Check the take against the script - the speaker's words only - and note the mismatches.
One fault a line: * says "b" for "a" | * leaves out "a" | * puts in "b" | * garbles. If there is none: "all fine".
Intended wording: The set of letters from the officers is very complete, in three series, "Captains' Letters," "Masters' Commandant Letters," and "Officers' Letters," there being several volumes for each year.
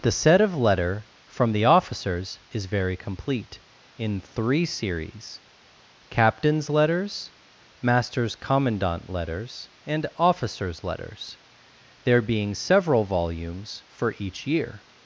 * says "letter" for "letters"